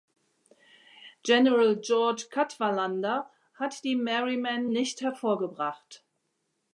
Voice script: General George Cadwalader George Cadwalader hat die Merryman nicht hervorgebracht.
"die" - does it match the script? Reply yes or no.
yes